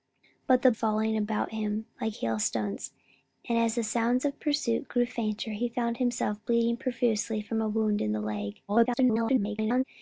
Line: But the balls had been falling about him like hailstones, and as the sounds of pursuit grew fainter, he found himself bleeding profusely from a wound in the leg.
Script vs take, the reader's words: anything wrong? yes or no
yes